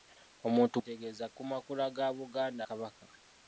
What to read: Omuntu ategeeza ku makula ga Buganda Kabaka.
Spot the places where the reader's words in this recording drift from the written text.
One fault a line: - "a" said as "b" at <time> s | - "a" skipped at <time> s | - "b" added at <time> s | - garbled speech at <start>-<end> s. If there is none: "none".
none